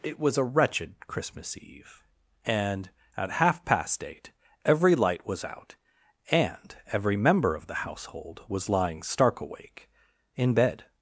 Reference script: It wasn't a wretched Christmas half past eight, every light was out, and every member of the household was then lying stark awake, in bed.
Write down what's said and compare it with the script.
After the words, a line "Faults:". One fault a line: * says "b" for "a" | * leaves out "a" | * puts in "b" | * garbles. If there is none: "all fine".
It was a wretched Christmas eve; and, at half past eight, every light was out, and every member of the household was lying stark awake, in bed.
Faults:
* says "was" for "wasn't"
* puts in "eve and at"
* leaves out "then"